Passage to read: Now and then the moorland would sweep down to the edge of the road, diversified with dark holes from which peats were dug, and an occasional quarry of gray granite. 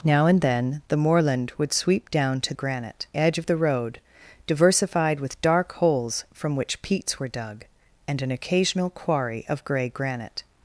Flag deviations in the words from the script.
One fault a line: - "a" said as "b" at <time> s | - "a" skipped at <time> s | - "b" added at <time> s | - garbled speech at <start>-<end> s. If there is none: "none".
- "the" said as "granite" at 2.5 s